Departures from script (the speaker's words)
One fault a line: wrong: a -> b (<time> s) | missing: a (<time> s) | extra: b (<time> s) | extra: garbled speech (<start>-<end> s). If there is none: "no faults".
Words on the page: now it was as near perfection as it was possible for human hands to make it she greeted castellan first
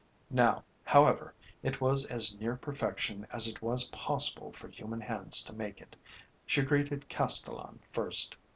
extra: however (0.8 s)